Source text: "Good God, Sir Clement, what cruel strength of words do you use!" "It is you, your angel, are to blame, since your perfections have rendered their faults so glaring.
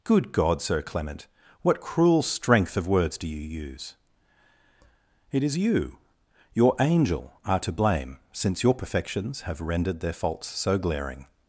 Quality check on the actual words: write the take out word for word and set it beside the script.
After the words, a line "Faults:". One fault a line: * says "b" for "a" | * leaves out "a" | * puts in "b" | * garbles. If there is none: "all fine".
"Good God, Sir Clement, what cruel strength of words do you use!" "It is you, your angel, are to blame, since your perfections have rendered their faults so glaring.
Faults:
all fine